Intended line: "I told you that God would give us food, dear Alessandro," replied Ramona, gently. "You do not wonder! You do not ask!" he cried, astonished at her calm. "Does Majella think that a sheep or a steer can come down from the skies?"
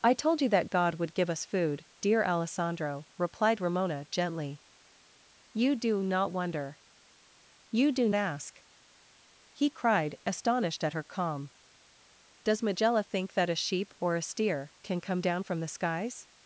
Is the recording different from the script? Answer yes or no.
yes